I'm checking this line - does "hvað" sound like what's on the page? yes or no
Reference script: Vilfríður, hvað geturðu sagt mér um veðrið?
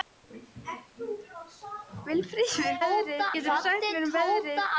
no